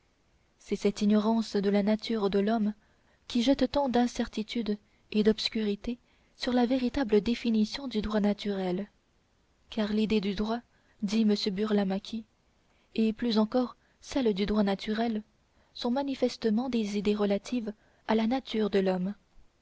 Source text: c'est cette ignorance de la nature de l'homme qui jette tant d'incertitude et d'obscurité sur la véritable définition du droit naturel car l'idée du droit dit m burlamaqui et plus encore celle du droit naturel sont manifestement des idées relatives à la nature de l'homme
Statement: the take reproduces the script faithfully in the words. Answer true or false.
true